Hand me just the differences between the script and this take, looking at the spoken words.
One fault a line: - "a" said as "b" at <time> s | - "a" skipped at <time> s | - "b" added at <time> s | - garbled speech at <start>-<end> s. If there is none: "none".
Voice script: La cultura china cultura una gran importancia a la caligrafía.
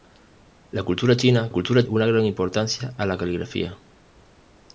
none